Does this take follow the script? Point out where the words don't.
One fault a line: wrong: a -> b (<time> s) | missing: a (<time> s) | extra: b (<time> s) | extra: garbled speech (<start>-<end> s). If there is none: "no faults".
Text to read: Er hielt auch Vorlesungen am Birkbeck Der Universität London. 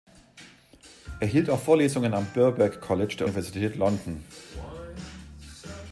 extra: College (2.8 s)